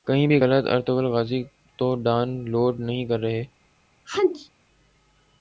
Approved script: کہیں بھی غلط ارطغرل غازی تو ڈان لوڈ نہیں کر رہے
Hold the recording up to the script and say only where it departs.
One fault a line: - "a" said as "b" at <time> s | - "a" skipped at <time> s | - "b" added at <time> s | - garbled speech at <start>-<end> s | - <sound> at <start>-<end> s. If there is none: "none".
- sneeze at 4.0-4.5 s